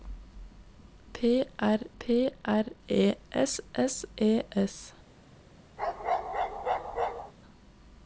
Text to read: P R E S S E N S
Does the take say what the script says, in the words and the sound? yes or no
no